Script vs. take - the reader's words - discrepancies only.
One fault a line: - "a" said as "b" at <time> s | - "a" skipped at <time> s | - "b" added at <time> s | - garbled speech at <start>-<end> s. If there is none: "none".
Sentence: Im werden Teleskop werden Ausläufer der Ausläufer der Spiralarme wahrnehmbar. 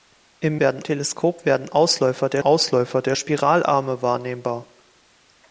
none